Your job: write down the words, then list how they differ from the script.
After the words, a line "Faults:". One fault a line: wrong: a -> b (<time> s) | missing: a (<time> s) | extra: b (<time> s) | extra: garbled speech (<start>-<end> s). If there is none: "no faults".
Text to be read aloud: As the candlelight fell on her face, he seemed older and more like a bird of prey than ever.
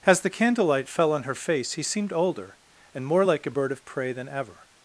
As the candlelight fell on her face, he seemed older and more like a bird of prey than ever.
Faults:
no faults